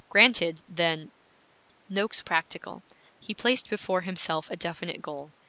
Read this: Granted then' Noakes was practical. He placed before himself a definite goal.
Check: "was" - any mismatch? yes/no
yes